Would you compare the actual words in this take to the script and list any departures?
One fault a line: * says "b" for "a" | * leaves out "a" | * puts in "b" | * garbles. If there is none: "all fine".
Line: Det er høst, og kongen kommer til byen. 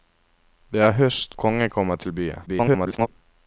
* leaves out "og"
* garbles